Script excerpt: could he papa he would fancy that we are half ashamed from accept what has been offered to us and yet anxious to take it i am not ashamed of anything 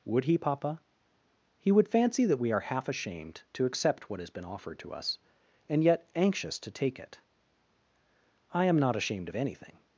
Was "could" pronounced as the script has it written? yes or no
no